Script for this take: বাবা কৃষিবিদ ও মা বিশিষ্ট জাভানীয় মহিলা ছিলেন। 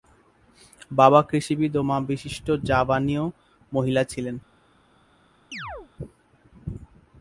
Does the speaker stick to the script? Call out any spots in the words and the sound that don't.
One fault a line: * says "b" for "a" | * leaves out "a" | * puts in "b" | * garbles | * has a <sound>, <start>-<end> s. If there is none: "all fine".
* has a chirp, 5.5-5.9 s